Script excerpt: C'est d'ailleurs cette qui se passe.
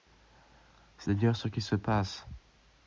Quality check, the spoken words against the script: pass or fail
fail